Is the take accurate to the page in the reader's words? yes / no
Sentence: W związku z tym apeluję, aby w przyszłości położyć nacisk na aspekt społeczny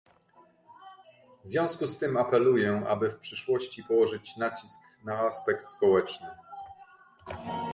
yes